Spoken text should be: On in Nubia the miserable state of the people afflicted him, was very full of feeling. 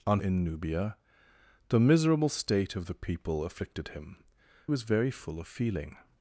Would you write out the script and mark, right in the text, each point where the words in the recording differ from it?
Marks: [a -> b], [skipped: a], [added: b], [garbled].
On in Nubia the miserable state of the people afflicted him, was very full of feeling.